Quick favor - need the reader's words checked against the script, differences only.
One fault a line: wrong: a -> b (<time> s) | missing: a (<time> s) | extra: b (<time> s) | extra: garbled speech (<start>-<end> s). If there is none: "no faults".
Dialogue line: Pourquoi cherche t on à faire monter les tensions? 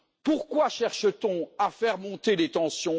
no faults